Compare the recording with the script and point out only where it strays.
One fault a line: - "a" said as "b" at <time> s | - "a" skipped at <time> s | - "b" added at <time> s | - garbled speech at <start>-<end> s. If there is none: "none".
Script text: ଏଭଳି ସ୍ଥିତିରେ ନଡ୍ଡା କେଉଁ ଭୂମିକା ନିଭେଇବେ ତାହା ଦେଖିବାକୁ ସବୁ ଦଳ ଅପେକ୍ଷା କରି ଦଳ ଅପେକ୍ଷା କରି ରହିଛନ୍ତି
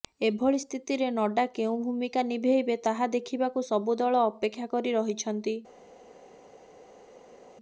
- "ଦଳ ଅପେକ୍ଷା କରି" skipped at 5.0 s